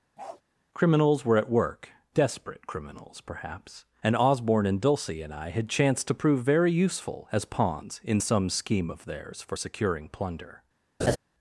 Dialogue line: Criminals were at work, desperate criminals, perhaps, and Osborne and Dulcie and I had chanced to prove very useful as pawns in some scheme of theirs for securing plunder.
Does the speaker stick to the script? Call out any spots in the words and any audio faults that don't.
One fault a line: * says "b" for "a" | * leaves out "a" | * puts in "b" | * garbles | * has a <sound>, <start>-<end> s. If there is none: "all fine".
* has a bark, 0.2-0.4 s
* has a laugh, 11.0-11.2 s